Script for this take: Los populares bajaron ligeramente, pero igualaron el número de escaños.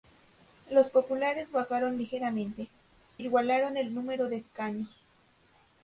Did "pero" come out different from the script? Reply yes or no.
yes